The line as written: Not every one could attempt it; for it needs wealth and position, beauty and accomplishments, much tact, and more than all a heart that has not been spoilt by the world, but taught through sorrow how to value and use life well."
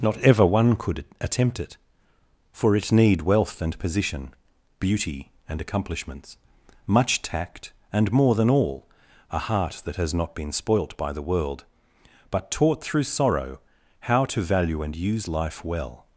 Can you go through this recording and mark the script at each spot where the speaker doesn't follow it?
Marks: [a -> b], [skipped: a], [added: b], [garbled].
Not [every -> ever] one could attempt it; for it [needs -> need] wealth and position, beauty and accomplishments, much tact, and more than all a heart that has not been spoilt by the world, but taught through sorrow how to value and use life well."